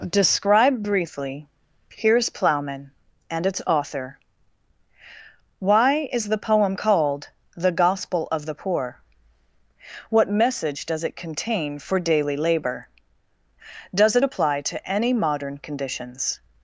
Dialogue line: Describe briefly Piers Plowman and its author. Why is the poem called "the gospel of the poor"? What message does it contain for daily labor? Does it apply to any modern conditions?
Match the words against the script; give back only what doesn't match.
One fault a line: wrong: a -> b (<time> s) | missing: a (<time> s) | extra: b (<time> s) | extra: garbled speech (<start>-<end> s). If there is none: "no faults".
no faults